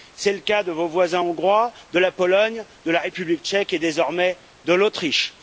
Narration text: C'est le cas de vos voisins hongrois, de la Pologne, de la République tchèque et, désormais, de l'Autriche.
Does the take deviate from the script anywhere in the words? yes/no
no